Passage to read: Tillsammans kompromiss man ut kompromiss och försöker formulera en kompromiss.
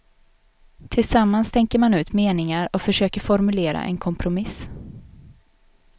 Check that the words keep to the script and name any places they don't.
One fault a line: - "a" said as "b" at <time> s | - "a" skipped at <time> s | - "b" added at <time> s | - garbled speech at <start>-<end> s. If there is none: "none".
- "kompromiss" said as "tänker" at 1.5 s
- "kompromiss" said as "meningar" at 2.1 s